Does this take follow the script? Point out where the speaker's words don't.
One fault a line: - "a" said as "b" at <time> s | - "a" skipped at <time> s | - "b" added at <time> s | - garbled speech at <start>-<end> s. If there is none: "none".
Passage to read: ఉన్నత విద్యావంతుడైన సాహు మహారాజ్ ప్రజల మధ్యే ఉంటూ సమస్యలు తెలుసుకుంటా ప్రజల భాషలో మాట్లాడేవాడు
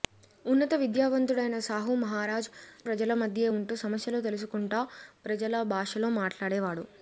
none